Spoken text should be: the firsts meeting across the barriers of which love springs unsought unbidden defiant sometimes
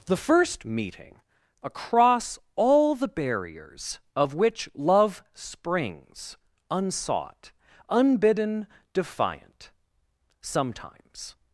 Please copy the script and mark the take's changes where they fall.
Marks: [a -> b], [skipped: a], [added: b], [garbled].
the [firsts -> first] meeting across [added: all] the barriers of which love springs unsought unbidden defiant sometimes